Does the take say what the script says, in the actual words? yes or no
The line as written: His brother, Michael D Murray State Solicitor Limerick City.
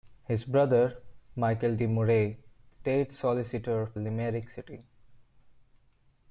yes